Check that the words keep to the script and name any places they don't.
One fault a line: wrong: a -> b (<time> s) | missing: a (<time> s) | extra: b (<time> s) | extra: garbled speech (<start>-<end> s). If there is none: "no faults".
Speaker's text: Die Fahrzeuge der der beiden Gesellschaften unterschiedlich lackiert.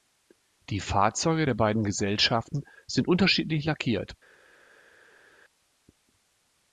missing: der (1.5 s)
extra: sind (2.9 s)